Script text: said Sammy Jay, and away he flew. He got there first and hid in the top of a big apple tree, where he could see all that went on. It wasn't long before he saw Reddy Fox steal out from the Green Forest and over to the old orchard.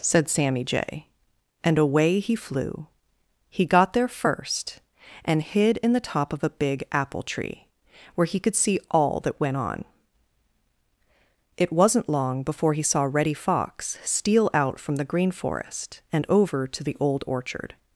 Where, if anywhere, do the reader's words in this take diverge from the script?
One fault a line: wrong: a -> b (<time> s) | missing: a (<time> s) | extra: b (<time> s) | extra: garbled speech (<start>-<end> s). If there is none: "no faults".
no faults